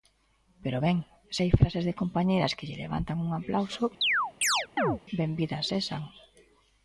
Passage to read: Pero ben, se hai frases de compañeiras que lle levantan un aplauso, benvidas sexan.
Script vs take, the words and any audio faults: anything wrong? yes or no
yes